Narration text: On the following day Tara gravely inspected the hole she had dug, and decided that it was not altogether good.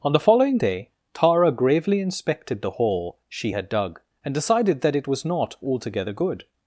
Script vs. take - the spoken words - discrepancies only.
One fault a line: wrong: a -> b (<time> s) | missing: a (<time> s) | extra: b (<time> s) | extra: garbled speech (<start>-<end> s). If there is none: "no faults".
no faults